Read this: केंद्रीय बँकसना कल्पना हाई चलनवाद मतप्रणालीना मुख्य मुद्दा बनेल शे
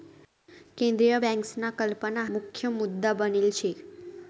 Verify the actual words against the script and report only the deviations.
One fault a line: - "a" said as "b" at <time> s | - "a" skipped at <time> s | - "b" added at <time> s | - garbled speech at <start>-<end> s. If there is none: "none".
- "हाई चलनवाद मतप्रणालीना" skipped at 2.2 s